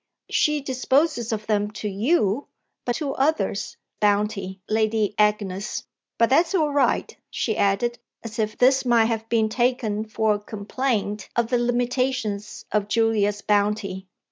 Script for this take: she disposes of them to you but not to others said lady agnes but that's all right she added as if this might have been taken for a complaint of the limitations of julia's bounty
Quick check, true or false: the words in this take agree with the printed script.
false